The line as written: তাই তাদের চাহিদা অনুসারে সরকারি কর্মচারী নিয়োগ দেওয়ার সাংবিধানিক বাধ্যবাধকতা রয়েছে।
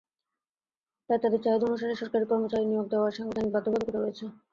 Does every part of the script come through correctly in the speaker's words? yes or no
yes